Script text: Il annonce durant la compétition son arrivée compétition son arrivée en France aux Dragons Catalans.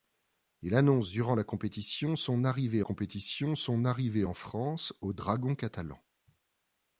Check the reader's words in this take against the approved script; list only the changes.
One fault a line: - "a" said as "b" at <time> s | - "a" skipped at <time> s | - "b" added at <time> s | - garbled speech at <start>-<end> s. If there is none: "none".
none